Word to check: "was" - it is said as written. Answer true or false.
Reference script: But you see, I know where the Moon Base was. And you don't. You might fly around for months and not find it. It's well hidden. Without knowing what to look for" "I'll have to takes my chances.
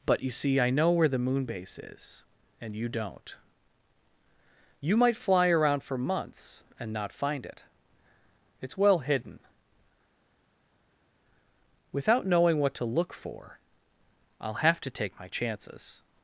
false